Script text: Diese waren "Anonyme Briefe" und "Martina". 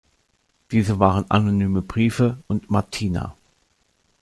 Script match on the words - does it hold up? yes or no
yes